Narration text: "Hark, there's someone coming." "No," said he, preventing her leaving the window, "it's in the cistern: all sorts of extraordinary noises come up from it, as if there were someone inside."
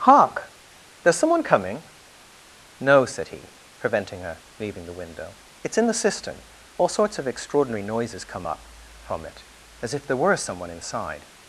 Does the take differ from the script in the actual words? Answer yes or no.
no